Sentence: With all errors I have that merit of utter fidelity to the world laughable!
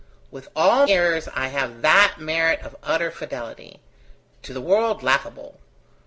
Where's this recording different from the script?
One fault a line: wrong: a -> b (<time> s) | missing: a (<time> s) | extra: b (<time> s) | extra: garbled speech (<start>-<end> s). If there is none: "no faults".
no faults